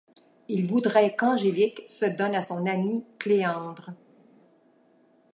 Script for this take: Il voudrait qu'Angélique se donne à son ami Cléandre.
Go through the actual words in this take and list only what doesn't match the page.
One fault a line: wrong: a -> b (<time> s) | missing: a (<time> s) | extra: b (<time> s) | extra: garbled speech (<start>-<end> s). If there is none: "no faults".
no faults